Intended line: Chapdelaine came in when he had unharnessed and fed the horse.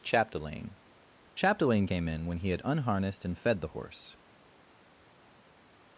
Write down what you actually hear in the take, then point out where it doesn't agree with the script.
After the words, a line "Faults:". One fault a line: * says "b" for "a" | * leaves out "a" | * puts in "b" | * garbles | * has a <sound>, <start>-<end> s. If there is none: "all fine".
Chapdelaine chapdelaine came in when he had unharnessed and fed the horse.
Faults:
* puts in "chapdelaine"